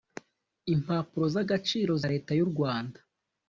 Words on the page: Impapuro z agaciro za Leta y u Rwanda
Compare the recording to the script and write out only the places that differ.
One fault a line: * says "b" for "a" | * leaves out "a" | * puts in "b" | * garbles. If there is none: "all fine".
* leaves out "za"